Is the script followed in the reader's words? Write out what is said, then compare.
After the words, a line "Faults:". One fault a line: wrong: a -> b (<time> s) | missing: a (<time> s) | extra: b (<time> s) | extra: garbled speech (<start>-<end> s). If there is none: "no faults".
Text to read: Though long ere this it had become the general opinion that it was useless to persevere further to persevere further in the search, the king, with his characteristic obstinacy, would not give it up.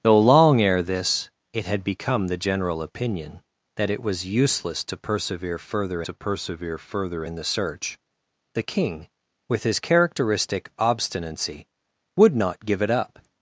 Though long ere this it had become the general opinion that it was useless to persevere further to persevere further in the search, the king, with his characteristic obstinacy, would not give it up.
Faults:
no faults